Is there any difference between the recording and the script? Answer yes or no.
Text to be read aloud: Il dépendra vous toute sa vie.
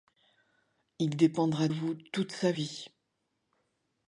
no